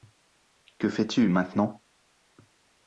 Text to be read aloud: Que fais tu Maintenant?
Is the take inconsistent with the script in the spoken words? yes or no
no